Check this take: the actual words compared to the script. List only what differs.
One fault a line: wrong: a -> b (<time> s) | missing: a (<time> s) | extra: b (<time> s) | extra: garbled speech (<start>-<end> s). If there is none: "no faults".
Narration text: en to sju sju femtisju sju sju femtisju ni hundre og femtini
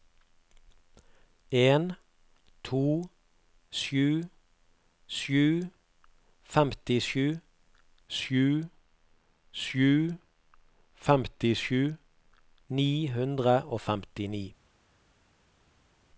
no faults